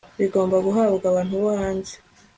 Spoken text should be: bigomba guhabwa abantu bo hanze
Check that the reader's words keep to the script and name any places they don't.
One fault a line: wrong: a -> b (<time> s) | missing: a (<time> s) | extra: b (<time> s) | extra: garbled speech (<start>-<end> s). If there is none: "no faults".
no faults